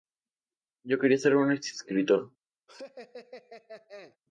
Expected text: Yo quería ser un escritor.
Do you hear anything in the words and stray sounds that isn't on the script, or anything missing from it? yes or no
yes